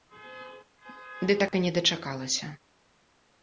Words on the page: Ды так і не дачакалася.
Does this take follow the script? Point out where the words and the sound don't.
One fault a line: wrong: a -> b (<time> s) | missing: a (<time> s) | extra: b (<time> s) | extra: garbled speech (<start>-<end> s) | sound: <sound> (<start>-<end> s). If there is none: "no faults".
sound: dropout (1.5-1.5 s)